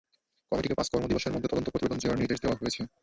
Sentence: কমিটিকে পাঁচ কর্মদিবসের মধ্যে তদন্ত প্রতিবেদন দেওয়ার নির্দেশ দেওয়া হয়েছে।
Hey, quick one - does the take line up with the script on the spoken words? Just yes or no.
yes